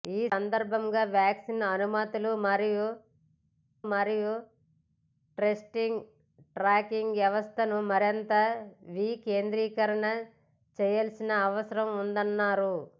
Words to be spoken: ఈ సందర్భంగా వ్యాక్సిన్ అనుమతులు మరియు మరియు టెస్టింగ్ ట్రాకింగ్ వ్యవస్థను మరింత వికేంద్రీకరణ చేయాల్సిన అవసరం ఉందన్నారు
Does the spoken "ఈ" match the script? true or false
true